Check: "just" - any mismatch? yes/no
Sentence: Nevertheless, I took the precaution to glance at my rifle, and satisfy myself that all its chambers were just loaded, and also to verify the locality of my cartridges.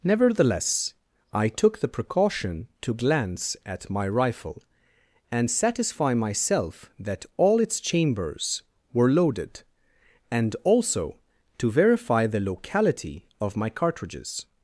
yes